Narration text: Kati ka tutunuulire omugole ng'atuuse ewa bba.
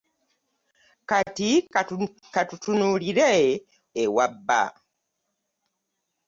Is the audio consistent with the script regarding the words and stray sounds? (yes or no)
no